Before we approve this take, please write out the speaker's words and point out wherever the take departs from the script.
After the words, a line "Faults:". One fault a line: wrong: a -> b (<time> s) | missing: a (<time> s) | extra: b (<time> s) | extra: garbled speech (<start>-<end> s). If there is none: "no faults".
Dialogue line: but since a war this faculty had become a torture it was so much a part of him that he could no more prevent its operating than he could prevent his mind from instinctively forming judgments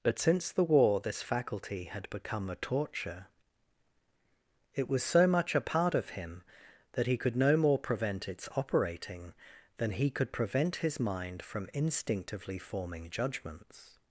but since the war this faculty had become a torture it was so much a part of him that he could no more prevent its operating than he could prevent his mind from instinctively forming judgments
Faults:
wrong: a -> the (0.5 s)